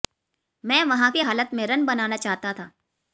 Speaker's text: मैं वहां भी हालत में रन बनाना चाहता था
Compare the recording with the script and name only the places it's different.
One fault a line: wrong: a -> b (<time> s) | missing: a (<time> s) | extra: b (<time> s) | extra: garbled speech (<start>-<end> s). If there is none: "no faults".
no faults